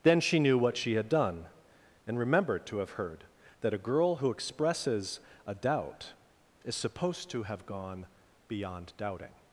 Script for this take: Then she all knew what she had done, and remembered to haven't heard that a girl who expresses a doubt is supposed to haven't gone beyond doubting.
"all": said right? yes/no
no